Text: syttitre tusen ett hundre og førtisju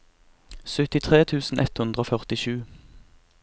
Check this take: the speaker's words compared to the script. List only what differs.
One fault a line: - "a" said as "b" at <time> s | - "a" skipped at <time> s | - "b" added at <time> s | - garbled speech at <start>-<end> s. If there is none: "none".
none